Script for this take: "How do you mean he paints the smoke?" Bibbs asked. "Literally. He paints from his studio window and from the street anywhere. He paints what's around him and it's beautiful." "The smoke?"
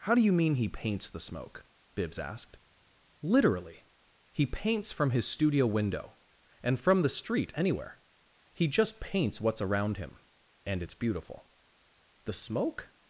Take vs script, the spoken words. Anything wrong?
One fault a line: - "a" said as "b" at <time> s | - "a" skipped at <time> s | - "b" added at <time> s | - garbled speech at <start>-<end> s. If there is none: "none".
- "just" added at 8.7 s